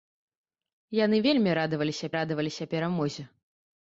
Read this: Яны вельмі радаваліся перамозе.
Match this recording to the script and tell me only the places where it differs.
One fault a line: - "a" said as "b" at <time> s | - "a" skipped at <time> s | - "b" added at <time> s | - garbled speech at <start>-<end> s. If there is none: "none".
- "радаваліся" added at 2.2 s